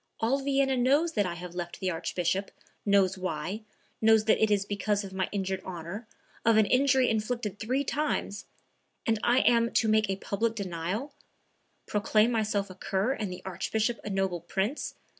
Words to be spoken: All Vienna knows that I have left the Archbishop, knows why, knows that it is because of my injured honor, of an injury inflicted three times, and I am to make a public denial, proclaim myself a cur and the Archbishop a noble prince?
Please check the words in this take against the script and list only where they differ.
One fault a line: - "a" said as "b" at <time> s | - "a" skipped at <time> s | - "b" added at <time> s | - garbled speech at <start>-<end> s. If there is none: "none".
none